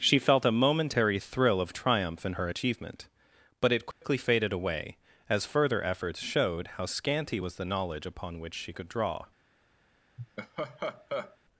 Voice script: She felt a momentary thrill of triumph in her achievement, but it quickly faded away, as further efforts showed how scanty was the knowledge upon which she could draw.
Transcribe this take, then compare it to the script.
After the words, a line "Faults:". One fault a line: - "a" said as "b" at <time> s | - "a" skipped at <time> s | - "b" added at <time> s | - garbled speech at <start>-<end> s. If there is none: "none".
She felt a momentary thrill of triumph in her achievement, but it quickly faded away, as further efforts showed how scanty was the knowledge upon which she could draw.
Faults:
none